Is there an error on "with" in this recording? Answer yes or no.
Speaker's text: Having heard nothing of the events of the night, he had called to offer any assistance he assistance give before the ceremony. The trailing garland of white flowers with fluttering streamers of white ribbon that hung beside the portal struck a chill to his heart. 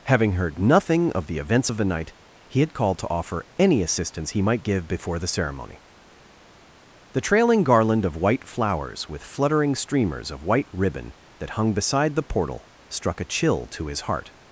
no